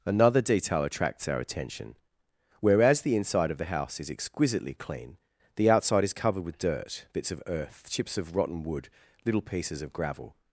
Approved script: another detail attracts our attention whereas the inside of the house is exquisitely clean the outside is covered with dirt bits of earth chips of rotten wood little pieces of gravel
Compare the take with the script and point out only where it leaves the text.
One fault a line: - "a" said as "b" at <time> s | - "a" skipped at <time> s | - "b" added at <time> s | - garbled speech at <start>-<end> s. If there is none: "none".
none